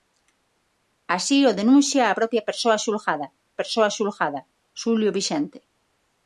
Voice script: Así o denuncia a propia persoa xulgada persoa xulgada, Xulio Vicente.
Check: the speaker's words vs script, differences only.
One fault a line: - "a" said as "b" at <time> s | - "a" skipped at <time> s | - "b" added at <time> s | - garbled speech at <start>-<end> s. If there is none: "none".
none